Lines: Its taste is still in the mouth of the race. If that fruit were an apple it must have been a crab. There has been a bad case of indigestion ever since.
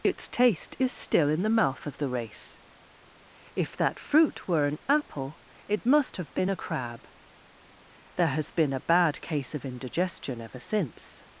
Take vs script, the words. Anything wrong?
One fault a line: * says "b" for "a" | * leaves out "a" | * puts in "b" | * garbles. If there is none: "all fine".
all fine